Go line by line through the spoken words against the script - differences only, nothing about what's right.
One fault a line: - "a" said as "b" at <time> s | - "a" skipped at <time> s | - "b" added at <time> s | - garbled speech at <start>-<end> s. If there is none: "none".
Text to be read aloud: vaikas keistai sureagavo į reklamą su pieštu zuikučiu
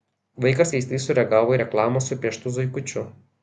none